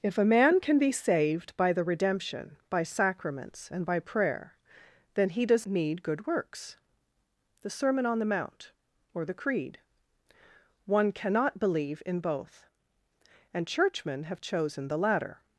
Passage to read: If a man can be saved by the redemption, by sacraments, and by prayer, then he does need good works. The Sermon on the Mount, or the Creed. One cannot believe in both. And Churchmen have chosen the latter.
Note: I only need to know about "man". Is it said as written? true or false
true